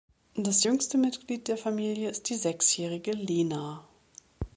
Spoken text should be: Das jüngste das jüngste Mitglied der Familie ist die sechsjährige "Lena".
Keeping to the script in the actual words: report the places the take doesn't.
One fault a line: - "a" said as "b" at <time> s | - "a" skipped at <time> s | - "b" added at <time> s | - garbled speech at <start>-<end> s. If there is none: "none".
- "das jüngste" skipped at 1.0 s